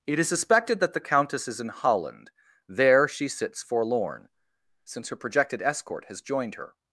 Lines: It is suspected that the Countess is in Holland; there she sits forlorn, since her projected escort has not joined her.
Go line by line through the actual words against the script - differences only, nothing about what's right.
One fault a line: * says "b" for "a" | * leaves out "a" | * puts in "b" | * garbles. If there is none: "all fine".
* leaves out "not"